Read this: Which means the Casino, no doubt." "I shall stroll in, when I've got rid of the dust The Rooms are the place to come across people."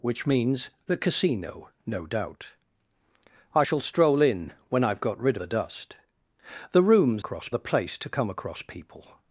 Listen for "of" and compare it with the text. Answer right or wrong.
wrong